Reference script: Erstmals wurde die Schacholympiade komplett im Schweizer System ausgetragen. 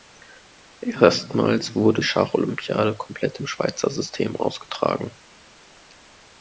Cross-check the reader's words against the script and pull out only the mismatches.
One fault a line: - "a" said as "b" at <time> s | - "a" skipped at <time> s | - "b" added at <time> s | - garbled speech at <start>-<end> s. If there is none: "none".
- "die" skipped at 2.0 s